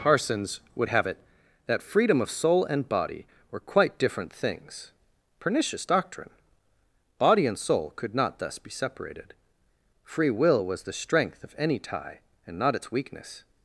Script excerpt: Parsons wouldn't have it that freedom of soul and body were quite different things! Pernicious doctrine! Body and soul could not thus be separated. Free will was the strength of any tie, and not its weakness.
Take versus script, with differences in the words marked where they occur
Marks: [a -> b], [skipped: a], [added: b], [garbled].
Parsons [wouldn't -> would] have it that freedom of soul and body were quite different things! Pernicious doctrine! Body and soul could not thus be separated. Free will was the strength of any tie, and not its weakness.